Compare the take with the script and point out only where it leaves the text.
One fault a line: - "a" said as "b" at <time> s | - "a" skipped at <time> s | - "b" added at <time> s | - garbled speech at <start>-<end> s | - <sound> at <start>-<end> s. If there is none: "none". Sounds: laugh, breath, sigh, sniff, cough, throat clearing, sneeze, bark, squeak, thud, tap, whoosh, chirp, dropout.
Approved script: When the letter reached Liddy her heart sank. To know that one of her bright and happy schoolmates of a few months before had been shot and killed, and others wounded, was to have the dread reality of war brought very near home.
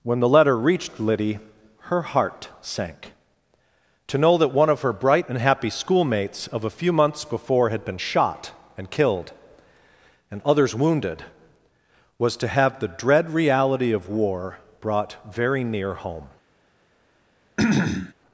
- throat clearing at 17.6-18.1 s